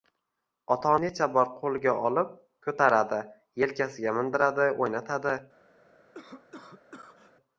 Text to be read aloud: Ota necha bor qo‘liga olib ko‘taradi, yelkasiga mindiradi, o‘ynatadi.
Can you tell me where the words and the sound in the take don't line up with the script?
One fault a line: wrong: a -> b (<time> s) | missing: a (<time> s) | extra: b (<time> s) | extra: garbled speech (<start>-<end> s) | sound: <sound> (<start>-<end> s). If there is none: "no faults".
sound: cough (6.1-7.3 s)